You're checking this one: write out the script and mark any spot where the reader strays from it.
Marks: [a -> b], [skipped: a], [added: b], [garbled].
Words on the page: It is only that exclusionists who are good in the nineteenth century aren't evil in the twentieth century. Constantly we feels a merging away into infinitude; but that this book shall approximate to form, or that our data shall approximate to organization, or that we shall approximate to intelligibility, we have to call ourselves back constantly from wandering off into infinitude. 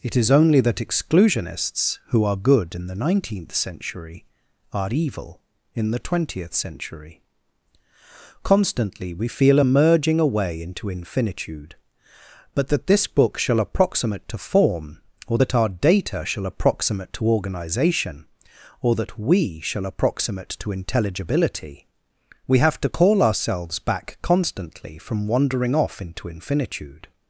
It is only that exclusionists who are good in the nineteenth century [aren't -> are] evil in the twentieth century. Constantly we [feels -> feel] a merging away into infinitude; but that this book shall approximate to form, or that our data shall approximate to organization, or that we shall approximate to intelligibility, we have to call ourselves back constantly from wandering off into infinitude.